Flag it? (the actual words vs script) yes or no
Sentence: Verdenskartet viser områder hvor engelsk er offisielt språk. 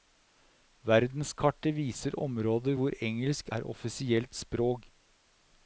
no